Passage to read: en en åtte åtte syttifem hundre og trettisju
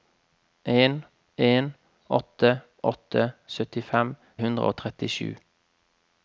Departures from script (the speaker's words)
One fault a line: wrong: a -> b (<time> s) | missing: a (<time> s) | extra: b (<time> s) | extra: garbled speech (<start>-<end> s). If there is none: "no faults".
no faults